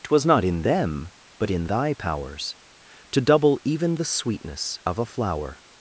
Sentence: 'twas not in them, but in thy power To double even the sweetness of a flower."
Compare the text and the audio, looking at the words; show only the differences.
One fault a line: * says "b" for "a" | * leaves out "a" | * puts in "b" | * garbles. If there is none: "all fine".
* says "powers" for "power"